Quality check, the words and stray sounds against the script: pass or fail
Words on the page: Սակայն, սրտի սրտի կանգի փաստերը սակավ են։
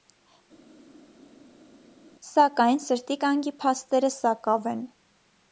fail